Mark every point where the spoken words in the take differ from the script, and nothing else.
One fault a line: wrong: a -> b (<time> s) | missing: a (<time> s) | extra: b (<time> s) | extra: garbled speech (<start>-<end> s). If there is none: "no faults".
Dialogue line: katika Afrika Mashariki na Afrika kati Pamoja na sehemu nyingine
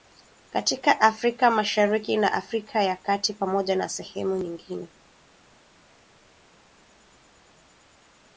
extra: ya (2.8 s)